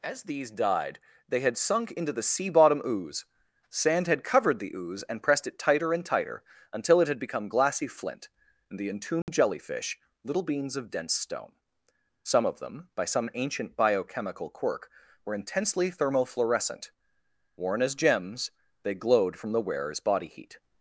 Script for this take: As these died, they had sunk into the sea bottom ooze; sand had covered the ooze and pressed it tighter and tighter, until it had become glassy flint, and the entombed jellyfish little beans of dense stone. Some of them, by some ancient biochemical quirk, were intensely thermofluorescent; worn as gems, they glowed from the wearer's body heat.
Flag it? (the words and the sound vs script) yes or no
yes